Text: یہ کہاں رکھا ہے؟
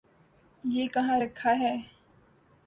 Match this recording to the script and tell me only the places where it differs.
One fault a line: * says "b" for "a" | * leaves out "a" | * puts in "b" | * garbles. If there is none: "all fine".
all fine